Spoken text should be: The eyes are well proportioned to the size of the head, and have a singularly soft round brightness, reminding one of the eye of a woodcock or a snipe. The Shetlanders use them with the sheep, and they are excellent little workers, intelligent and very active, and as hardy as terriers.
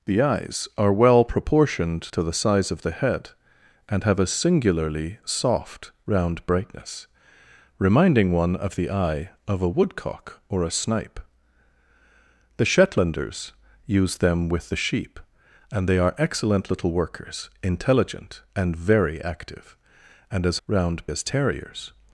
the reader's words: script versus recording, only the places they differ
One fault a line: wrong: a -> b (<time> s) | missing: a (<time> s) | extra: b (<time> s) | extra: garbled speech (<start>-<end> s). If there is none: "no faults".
wrong: hardy -> round (20.7 s)